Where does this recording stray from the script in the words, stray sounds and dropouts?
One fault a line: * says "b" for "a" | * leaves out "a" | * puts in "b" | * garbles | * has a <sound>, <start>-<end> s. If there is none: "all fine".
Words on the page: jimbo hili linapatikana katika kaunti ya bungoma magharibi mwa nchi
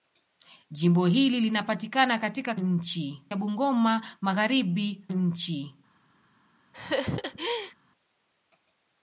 * says "nchi" for "kaunti"
* leaves out "mwa"
* has a laugh, 6.7-7.7 s